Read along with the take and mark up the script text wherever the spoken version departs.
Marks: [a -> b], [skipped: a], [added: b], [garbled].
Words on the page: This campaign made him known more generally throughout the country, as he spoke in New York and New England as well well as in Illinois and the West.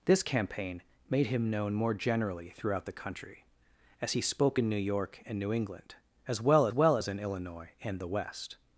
This campaign made him known more generally throughout the country, as he spoke in New York and New England as well well as in Illinois and the West.